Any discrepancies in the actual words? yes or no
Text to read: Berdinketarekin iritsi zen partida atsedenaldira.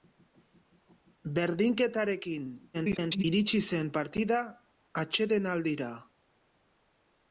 yes